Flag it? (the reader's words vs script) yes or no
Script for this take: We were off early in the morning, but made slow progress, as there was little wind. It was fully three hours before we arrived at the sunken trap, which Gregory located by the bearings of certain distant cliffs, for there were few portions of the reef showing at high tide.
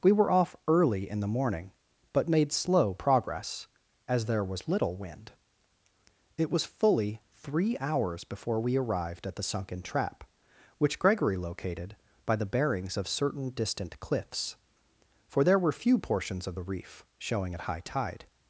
no